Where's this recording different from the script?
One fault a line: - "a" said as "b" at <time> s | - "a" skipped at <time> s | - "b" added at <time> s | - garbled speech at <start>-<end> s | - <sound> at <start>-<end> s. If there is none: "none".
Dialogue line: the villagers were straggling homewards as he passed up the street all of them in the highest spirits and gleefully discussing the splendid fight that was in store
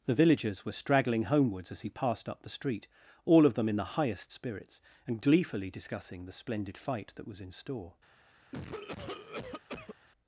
- cough at 8.5-9.9 s